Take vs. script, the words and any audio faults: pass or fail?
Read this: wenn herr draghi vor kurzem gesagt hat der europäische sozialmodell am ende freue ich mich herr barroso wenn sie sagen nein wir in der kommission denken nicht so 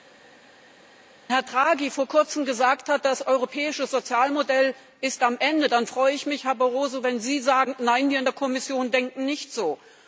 fail